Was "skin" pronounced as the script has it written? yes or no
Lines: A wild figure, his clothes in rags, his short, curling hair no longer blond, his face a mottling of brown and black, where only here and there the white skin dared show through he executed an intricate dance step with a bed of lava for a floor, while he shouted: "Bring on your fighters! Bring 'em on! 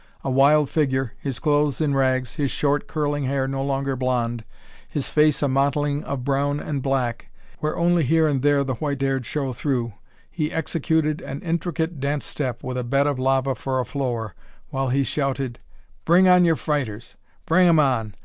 no